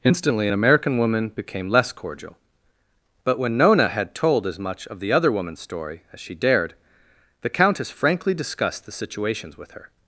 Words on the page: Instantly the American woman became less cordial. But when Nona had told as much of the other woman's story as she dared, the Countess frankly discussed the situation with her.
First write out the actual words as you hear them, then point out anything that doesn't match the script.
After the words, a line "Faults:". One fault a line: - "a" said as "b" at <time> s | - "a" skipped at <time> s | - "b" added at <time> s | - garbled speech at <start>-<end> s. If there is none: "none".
Instantly an American woman became less cordial. But when Nona had told as much of the other woman's story as she dared, the Countess frankly discussed the situations with her.
Faults:
- "the" said as "an" at 0.4 s
- "situation" said as "situations" at 8.9 s